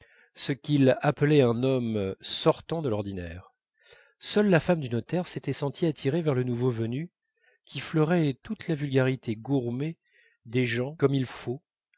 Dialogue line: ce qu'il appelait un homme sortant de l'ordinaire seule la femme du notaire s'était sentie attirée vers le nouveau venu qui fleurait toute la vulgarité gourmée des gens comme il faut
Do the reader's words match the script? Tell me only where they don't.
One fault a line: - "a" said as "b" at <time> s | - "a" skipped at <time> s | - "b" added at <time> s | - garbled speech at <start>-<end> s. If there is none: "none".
none